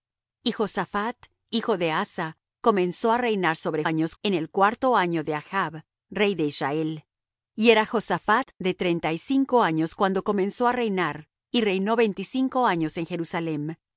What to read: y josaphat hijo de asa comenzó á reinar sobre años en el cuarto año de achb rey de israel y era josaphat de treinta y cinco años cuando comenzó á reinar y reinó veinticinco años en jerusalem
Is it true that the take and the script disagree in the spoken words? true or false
false